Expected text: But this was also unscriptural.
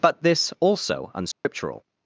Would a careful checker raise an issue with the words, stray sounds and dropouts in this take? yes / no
yes